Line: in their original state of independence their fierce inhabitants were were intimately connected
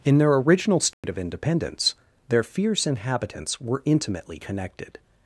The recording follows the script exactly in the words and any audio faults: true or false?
false